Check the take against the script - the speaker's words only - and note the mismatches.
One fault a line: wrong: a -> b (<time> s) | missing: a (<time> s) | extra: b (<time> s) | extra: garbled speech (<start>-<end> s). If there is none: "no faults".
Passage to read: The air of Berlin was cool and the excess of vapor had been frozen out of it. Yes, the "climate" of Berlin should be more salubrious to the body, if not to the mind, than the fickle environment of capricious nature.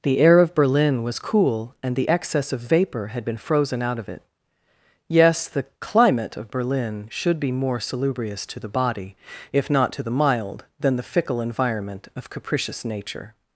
wrong: mind -> mild (10.1 s)